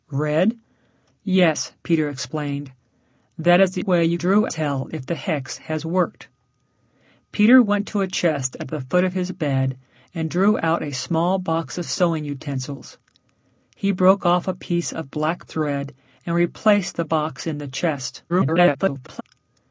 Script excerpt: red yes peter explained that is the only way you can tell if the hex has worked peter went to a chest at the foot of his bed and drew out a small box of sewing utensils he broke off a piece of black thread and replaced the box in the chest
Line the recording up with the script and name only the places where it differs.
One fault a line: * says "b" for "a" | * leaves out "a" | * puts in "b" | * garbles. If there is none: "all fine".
* leaves out "only"
* says "drew" for "can"
* garbles